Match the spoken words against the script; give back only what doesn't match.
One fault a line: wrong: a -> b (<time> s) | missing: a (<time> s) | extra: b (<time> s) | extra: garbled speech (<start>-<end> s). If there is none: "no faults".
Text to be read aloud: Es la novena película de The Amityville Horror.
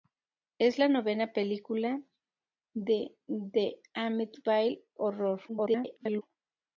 extra: garbled speech (5.5-6.2 s)